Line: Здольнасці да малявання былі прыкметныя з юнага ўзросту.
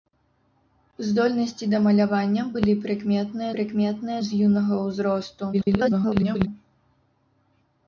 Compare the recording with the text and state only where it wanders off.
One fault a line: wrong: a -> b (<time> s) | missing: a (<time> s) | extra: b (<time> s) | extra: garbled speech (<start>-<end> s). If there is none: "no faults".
extra: прыкметныя (3.6 s)
extra: garbled speech (5.5-6.5 s)